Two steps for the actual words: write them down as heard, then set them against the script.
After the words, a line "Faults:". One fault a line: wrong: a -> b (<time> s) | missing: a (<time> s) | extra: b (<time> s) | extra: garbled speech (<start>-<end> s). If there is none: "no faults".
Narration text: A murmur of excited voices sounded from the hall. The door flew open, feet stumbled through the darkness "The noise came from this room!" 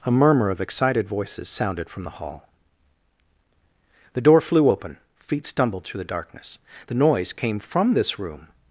A murmur of excited voices sounded from the hall. The door flew open, feet stumbled through the darkness "The noise came from this room!"
Faults:
no faults